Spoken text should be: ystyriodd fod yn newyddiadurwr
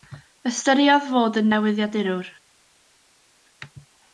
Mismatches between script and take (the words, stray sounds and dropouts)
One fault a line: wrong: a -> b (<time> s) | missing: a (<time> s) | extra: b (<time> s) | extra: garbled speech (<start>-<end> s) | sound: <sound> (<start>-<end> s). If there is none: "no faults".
no faults